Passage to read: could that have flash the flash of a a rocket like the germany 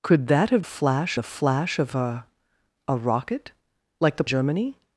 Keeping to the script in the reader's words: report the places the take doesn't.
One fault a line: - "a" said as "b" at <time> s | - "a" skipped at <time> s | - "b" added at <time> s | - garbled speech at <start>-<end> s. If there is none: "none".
none